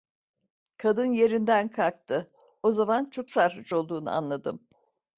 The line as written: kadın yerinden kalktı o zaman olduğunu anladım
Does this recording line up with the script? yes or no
no